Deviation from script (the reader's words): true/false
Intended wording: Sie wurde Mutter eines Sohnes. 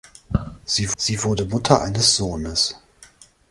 true